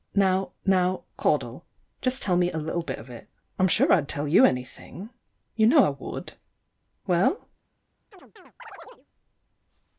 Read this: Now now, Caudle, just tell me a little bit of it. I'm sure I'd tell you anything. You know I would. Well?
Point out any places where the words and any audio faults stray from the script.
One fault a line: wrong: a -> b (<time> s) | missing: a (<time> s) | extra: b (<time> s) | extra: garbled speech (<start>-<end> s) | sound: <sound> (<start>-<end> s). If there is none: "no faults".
sound: chirp (8.1-9.1 s)